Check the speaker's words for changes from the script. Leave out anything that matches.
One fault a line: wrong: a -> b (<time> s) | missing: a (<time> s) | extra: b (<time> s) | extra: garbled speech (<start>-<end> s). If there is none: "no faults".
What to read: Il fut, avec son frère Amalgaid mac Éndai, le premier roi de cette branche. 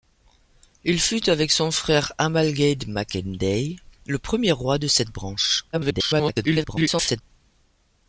extra: garbled speech (5.7-7.2 s)